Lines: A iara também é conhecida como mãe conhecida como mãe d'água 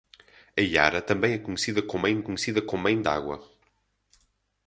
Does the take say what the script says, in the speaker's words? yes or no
yes